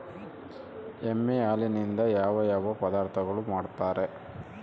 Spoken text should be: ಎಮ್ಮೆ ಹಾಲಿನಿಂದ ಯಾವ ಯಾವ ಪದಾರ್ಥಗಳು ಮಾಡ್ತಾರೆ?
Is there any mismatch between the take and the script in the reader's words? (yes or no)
no